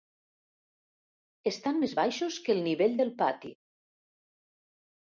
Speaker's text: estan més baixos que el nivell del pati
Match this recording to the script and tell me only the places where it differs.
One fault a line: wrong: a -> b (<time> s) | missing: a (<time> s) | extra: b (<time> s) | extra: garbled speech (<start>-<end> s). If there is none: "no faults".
no faults